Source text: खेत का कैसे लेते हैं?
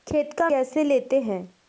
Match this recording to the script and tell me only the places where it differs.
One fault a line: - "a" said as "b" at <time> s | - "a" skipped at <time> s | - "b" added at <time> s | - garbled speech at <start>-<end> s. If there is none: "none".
none